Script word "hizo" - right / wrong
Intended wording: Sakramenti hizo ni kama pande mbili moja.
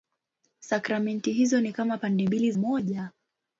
right